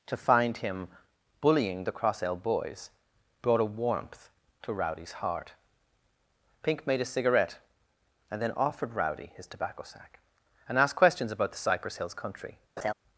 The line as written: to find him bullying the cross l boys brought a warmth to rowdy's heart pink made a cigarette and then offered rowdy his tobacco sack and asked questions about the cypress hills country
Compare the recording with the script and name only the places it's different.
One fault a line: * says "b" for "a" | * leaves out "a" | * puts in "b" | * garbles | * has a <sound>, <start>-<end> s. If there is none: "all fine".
* has a laugh, 12.8-12.9 s